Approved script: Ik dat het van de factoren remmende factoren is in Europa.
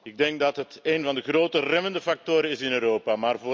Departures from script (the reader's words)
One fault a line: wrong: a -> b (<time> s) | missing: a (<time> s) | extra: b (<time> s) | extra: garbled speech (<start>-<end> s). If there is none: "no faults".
extra: denk (0.2 s)
extra: een (0.8 s)
wrong: factoren -> grote (1.2 s)